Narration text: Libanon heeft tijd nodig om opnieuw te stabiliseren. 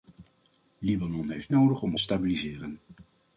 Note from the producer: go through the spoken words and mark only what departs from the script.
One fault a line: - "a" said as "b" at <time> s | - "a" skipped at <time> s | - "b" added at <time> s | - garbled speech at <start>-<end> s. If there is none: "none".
- "tijd" skipped at 1.5 s
- "opnieuw te" skipped at 1.9 s